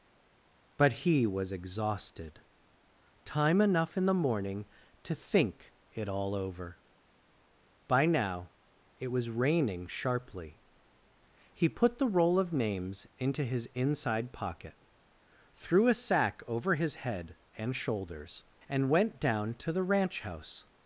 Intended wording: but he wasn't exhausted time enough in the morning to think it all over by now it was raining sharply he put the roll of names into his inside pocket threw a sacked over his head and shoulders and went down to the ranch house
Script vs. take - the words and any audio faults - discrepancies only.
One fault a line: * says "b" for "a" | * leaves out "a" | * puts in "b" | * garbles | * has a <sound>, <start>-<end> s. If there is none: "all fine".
* says "was" for "wasn't"
* says "sack" for "sacked"